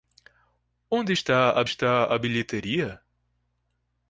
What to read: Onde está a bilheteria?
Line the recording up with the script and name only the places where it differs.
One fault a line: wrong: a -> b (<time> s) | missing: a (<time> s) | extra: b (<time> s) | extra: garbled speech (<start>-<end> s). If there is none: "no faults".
extra: está a (1.6 s)